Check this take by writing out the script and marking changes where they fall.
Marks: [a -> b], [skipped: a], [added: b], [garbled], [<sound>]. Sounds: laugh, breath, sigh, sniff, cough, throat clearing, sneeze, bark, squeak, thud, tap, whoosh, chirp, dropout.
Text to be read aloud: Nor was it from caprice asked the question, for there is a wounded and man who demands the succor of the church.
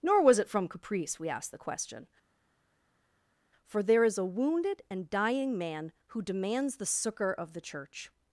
Nor was it from caprice [added: we] asked the question, for there is a wounded and [added: dying] man who demands the succor of the church.